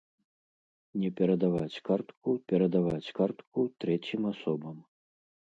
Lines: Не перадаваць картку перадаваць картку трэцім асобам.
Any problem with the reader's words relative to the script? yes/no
no